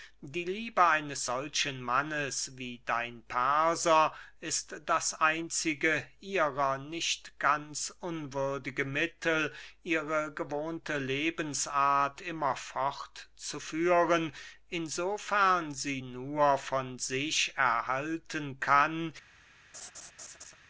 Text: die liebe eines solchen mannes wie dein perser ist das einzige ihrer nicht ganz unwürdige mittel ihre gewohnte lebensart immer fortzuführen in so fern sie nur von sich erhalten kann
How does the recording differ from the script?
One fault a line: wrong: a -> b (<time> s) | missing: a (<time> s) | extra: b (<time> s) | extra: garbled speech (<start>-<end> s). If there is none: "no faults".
no faults